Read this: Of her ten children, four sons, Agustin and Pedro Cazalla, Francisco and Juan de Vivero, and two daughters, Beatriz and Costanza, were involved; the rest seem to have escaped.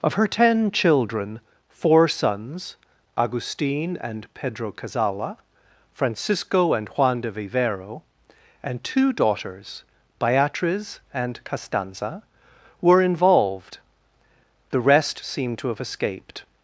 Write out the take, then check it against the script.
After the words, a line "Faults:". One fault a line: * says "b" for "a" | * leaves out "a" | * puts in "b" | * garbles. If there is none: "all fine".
Of her ten children, four sons, Agustin and Pedro Cazalla, Francisco and Juan de Vivero, and two daughters, Beatriz and Costanza, were involved; the rest seem to have escaped.
Faults:
all fine